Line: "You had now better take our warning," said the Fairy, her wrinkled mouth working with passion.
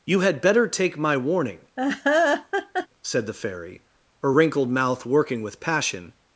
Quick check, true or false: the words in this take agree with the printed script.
false